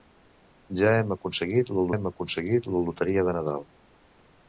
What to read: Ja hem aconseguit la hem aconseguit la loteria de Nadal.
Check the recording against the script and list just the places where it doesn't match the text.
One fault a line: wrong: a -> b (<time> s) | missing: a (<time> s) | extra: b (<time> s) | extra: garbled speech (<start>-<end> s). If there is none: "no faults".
no faults